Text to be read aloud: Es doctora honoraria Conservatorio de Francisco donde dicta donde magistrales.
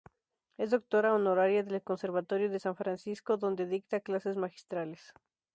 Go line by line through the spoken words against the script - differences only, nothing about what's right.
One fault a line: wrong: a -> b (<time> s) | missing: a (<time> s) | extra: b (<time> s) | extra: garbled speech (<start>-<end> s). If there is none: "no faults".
extra: del (1.6 s)
extra: San (2.6 s)
wrong: donde -> clases (4.0 s)